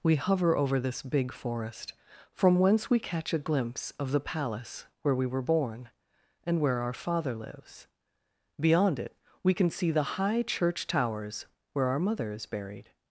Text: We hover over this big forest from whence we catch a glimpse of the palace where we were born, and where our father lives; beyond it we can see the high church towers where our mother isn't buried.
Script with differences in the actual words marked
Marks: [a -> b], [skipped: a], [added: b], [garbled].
We hover over this big forest from whence we catch a glimpse of the palace where we were born, and where our father lives; beyond it we can see the high church towers where our mother [isn't -> is] buried.